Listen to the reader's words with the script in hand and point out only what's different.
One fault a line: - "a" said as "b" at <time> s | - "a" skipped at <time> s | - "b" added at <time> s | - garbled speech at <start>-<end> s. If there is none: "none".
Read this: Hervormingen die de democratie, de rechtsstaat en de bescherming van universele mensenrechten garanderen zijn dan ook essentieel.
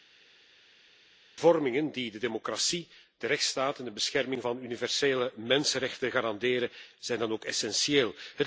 none